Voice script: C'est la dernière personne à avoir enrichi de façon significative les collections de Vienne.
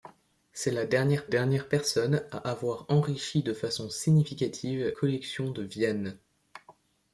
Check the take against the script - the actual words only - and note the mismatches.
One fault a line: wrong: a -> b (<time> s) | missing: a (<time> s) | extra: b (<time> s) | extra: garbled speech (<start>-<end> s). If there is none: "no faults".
extra: dernière (1.3 s)
missing: les (4.9 s)